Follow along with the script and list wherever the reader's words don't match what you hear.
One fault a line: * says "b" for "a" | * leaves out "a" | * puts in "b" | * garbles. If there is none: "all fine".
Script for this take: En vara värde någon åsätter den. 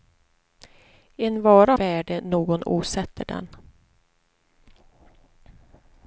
all fine